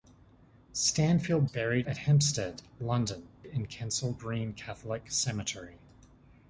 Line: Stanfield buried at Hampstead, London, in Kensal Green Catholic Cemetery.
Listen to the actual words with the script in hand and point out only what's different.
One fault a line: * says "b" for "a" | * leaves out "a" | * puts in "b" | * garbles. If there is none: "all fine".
all fine